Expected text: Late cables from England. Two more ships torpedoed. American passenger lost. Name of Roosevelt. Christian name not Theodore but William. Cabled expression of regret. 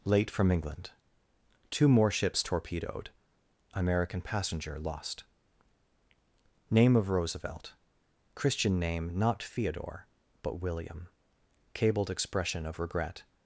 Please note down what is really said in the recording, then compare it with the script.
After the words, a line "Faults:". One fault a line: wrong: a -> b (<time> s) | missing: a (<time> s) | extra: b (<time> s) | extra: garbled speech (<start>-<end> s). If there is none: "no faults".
Late from England. Two more ships torpedoed. American passenger lost. Name of Roosevelt. Christian name not Theodore but William. Cabled expression of regret.
Faults:
missing: cables (0.3 s)